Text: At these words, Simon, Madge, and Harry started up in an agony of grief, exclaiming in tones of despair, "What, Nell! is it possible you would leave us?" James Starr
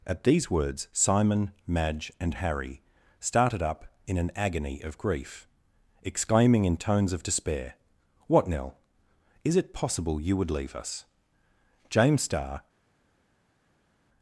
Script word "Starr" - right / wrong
right